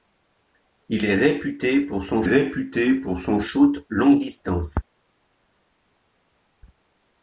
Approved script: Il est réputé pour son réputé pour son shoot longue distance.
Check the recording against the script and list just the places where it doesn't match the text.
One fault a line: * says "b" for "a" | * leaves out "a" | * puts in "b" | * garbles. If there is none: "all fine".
all fine